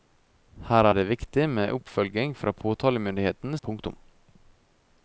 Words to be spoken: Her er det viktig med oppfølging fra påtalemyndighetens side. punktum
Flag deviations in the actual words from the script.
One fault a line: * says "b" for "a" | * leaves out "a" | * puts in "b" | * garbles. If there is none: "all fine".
* leaves out "side"